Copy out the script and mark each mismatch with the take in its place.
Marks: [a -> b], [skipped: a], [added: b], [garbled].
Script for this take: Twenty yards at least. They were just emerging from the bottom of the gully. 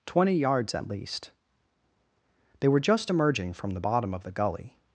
Twenty yards at least. They were just emerging from the bottom of the gully.